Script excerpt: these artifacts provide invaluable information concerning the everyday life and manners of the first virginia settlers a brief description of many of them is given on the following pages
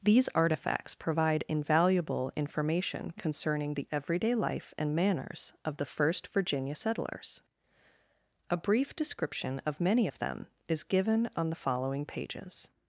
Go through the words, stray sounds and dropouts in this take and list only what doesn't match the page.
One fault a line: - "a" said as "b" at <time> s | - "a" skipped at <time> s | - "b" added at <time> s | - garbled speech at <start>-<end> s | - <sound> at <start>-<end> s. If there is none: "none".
none